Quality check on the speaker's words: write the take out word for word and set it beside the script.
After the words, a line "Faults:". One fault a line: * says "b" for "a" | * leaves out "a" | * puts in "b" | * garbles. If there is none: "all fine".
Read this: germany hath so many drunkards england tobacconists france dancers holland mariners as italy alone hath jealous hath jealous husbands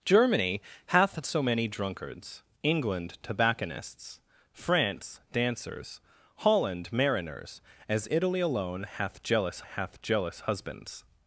germany hath so many drunkards england tobacconists france dancers holland mariners as italy alone hath jealous hath jealous husbands
Faults:
all fine